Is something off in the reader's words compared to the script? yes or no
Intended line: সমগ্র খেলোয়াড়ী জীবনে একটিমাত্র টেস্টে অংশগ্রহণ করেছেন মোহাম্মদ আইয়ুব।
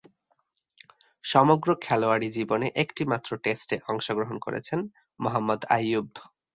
no